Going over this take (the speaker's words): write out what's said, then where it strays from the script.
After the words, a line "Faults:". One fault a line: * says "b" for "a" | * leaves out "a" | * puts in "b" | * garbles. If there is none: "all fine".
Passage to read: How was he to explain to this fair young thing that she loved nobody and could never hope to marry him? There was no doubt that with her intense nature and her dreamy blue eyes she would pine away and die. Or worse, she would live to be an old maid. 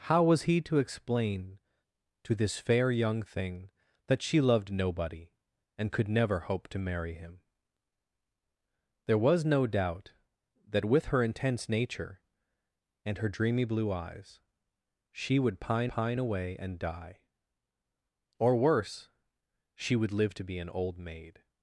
How was he to explain to this fair young thing that she loved nobody and could never hope to marry him? There was no doubt that with her intense nature and her dreamy blue eyes she would pine pine away and die. Or worse, she would live to be an old maid.
Faults:
* puts in "pine"